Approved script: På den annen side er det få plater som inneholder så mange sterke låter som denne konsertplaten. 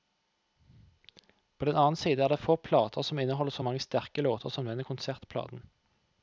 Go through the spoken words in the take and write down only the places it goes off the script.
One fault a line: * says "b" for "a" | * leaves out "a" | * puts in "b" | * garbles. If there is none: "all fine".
all fine